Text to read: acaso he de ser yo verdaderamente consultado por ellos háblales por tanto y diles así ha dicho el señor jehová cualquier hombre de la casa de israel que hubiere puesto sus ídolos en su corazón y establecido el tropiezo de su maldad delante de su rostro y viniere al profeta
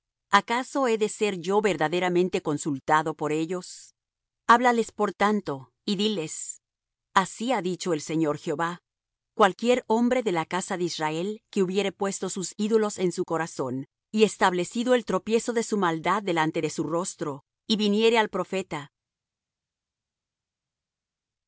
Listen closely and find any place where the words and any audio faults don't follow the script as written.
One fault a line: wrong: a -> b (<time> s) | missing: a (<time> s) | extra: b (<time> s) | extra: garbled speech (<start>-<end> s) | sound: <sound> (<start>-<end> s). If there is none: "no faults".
no faults